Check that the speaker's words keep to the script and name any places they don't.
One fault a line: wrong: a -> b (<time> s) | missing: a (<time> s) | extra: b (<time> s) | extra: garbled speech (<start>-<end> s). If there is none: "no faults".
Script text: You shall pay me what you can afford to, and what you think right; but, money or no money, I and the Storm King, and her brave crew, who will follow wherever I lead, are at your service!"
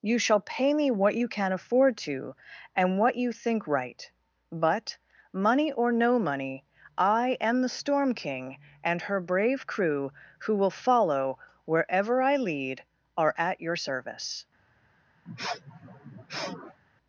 wrong: and -> am (7.4 s)